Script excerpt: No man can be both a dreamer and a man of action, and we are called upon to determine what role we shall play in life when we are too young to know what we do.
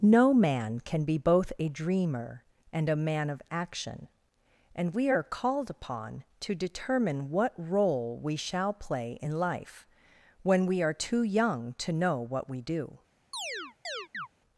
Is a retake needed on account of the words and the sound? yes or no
yes